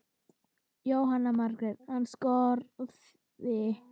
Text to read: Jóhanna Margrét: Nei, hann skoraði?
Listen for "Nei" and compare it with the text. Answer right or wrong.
wrong